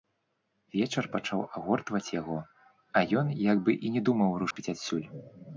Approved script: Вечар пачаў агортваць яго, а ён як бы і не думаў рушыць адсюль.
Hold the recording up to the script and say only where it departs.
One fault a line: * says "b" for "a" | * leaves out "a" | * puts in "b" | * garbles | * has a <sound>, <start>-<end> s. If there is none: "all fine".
* has a dropout, 4.5-4.6 s